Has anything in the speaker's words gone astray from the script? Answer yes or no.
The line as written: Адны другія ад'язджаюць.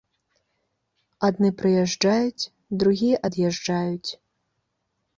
yes